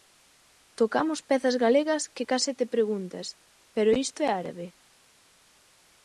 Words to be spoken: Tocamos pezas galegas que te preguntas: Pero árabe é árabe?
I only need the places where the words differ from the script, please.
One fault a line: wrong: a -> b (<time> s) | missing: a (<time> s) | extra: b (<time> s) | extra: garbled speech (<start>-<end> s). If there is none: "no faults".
extra: case (2.3 s)
wrong: árabe -> isto (4.0 s)